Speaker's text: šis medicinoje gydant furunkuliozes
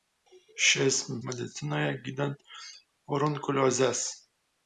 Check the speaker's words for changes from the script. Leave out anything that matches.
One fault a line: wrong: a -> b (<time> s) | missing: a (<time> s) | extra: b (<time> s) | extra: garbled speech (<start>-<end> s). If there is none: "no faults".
no faults